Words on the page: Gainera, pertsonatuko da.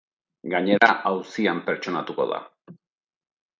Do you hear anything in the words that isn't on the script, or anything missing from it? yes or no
yes